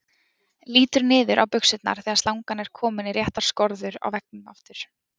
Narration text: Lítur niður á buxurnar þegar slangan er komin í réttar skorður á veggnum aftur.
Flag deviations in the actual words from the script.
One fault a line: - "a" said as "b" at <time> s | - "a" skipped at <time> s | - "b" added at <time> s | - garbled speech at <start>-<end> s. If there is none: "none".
none